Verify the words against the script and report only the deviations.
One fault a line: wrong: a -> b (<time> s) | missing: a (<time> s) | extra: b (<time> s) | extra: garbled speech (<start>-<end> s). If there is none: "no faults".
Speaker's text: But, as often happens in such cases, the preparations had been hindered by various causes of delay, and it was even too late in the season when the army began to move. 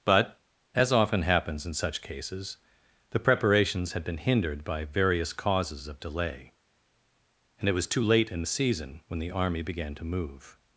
missing: even (7.9 s)